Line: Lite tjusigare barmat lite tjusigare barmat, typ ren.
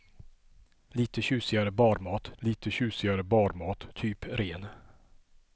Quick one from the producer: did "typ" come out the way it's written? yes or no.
yes